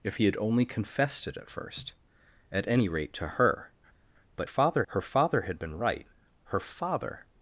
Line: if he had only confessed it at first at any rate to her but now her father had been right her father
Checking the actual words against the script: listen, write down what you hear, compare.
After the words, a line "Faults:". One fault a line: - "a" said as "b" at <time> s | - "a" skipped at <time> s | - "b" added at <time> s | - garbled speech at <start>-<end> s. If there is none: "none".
if he had only confessed it at first at any rate to her but father her father had been right her father
Faults:
- "now" said as "father" at 4.4 s